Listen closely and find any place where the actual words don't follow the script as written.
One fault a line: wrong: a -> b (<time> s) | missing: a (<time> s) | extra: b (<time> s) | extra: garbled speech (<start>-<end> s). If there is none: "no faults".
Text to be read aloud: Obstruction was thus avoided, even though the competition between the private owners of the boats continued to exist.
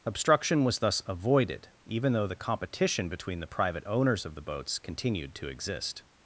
no faults